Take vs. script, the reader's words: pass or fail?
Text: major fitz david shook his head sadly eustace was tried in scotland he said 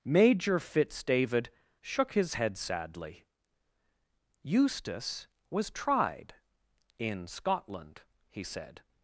pass